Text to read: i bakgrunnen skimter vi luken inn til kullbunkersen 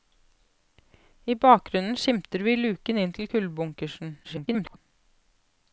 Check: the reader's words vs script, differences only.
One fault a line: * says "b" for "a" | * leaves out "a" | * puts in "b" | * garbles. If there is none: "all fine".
* garbles